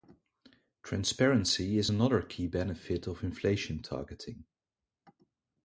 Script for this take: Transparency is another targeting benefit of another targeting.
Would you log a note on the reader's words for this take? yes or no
yes